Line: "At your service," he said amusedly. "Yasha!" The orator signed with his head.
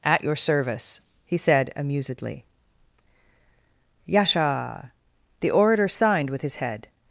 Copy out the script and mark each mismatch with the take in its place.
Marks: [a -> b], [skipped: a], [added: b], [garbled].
"At your service," he said amusedly. "Yasha!" The orator signed with his head.